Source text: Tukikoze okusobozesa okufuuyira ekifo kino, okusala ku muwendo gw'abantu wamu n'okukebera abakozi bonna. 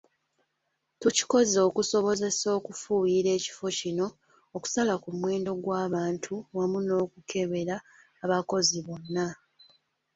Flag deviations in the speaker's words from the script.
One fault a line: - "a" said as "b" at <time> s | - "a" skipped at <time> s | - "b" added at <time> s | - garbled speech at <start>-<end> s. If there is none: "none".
none